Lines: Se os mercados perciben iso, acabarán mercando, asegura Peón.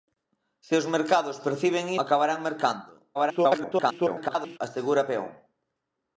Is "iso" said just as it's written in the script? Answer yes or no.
no